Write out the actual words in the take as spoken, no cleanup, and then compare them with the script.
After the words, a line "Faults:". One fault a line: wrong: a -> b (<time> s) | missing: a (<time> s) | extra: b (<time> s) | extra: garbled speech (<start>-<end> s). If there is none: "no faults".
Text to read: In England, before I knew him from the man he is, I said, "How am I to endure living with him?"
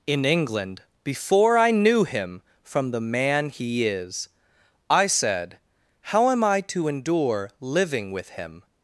In England, before I knew him from the man he is, I said, "How am I to endure living with him?"
Faults:
no faults